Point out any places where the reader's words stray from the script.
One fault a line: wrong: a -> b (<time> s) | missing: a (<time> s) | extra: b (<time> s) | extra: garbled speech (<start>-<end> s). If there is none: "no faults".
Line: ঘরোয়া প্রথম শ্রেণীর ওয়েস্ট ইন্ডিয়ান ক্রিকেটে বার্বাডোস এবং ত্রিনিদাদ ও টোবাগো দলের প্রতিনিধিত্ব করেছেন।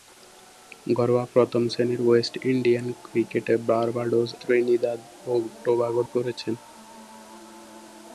missing: এবং (4.3 s)
missing: দলের প্রতিনিধিত্ব (6.0 s)